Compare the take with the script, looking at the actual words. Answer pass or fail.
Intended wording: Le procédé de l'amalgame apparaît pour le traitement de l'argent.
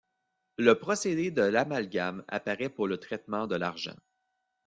pass